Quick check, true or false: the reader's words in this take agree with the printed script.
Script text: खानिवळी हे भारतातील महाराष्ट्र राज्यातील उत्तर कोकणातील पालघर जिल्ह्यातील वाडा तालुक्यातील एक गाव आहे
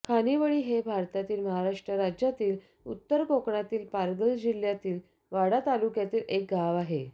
true